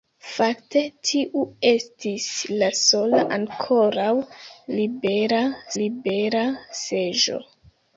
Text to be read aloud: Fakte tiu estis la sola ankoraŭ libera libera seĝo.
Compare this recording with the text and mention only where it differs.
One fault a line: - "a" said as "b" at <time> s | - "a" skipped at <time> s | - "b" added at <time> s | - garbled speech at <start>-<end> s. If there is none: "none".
none